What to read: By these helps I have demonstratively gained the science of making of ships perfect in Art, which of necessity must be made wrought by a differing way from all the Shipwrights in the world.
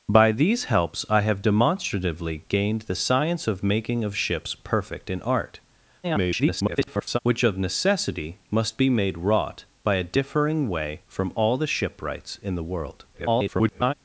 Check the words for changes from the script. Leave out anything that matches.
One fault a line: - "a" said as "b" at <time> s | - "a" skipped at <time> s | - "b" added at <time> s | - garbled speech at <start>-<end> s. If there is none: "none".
- garbled speech at 6.0-7.2 s
- garbled speech at 13.1-13.9 s